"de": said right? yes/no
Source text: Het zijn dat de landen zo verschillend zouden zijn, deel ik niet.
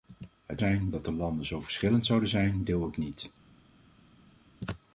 yes